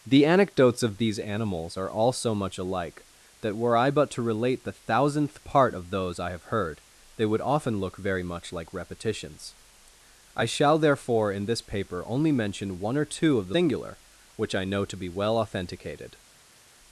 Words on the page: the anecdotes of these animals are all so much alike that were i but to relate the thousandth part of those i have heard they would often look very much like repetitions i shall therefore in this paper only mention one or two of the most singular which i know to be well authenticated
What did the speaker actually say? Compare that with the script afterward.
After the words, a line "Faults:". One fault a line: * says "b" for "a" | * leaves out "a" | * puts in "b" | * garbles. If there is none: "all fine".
the anecdotes of these animals are all so much alike that were i but to relate the thousandth part of those i have heard they would often look very much like repetitions i shall therefore in this paper only mention one or two of the singular which i know to be well authenticated
Faults:
* leaves out "most"